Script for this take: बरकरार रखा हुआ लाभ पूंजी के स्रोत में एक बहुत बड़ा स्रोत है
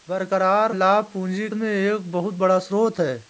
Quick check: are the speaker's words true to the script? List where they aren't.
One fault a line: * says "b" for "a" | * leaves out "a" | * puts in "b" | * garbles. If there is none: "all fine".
* leaves out "रखा हुआ"
* leaves out "के स्रोत"